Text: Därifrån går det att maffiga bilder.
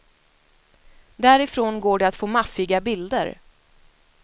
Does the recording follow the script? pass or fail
fail